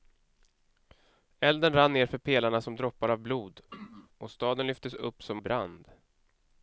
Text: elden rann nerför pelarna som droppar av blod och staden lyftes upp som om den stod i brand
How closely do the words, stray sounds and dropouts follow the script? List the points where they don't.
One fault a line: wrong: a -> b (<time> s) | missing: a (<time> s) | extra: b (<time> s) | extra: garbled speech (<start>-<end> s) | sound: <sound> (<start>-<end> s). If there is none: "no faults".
sound: throat clearing (3.7-4.1 s)
missing: om den stod (5.4 s)